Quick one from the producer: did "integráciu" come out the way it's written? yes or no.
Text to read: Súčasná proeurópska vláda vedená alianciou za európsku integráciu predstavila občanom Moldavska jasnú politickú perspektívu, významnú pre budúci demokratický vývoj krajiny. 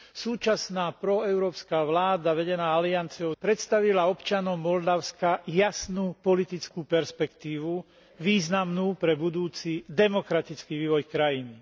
no